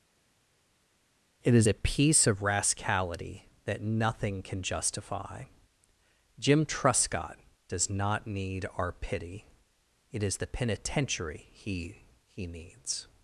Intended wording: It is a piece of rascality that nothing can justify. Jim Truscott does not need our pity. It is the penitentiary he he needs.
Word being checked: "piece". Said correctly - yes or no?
yes